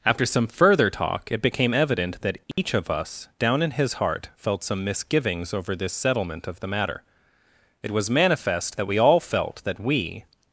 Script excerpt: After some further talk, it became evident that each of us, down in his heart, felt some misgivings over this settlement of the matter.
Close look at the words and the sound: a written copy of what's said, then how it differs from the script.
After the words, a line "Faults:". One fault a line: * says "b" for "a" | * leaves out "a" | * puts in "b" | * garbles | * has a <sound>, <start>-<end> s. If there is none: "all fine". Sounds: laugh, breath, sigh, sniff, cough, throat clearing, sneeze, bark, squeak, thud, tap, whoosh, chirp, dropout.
After some further talk, it became evident that each of us, down in his heart, felt some misgivings over this settlement of the matter. It was manifest that we all felt that we
Faults:
* has a dropout, 2.5-2.6 s
* puts in "It was manifest that we all felt that we"